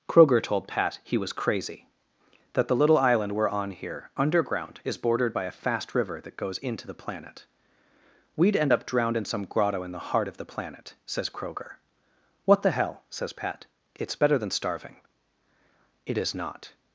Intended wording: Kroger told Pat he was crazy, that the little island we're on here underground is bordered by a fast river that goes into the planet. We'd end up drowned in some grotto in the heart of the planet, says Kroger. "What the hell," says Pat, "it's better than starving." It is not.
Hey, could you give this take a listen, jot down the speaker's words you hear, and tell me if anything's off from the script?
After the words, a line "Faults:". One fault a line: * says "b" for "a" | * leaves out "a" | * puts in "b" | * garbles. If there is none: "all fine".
Kroger told Pat he was crazy, that the little island we're on here underground is bordered by a fast river that goes into the planet. We'd end up drowned in some grotto in the heart of the planet, says Kroger. "What the hell," says Pat, "it's better than starving." It is not.
Faults:
all fine